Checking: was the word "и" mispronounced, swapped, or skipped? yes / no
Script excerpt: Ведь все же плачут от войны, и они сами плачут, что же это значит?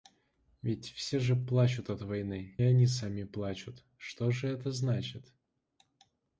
yes